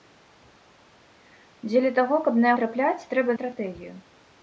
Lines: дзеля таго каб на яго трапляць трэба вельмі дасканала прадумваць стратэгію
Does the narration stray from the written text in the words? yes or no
yes